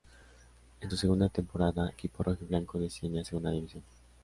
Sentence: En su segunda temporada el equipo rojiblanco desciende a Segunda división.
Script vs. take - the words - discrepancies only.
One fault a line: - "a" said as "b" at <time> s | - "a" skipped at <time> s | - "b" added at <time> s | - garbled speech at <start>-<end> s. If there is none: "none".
- "el" skipped at 1.9 s